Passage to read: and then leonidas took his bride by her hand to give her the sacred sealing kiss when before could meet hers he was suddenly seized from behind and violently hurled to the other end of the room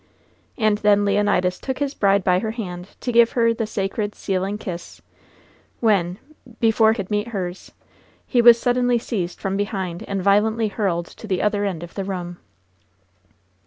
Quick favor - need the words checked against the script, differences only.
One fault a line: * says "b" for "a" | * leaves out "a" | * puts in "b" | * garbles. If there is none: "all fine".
all fine